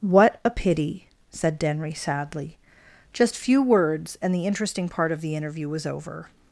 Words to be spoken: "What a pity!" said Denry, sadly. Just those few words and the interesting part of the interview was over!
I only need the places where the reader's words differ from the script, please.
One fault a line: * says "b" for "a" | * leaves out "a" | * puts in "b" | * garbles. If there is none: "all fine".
* leaves out "those"